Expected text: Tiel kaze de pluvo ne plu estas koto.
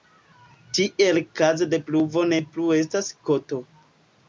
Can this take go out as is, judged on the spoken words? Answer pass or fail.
pass